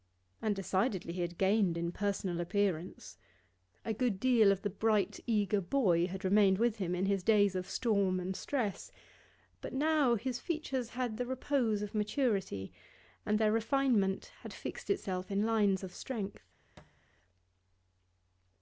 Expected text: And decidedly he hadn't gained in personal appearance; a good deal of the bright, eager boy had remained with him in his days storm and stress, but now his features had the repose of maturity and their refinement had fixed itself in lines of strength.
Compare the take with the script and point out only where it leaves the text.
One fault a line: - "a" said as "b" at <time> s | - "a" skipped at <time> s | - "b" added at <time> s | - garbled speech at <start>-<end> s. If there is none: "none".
- "hadn't" said as "had" at 1.2 s
- "of" added at 7.5 s